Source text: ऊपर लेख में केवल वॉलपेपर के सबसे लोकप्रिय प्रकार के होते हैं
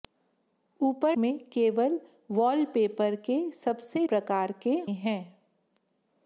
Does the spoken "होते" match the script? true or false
false